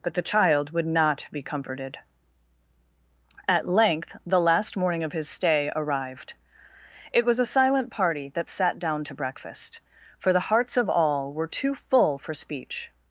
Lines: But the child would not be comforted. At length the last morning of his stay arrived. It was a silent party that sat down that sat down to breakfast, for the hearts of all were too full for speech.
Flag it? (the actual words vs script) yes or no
yes